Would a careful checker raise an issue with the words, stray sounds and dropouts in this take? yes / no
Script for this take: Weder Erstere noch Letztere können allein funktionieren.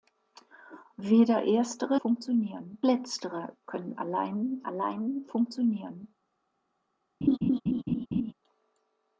yes